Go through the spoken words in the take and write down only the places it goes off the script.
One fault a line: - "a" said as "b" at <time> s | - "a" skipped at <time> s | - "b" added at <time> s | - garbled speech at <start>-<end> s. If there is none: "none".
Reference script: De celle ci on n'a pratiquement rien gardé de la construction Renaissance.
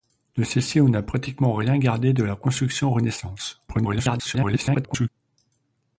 - garbled speech at 3.7-5.1 s